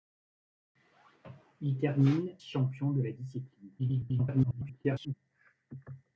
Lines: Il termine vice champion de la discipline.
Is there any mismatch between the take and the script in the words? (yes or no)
yes